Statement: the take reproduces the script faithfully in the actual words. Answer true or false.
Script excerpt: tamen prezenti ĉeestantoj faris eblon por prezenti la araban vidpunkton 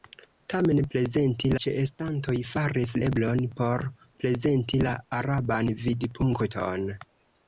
true